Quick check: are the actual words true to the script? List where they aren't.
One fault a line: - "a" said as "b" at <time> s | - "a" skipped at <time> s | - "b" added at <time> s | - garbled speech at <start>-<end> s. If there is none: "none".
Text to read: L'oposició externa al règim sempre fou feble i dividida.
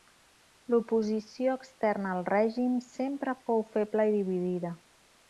none